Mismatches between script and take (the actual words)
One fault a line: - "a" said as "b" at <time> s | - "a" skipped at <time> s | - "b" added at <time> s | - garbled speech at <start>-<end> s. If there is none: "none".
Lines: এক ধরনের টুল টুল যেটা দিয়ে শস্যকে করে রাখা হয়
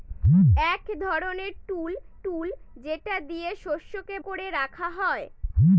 none